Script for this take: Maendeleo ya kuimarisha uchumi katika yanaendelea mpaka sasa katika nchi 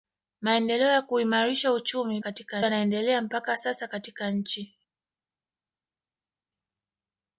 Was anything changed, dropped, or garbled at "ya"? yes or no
no